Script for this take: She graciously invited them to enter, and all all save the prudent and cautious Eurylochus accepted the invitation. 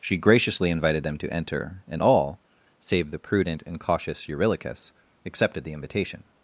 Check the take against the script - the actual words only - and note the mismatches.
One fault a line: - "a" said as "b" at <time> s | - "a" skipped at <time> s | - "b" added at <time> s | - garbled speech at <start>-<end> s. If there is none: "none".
- "all" skipped at 2.4 s